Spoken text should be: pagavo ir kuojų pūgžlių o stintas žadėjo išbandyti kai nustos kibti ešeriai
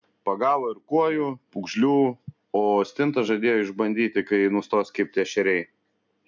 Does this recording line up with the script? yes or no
yes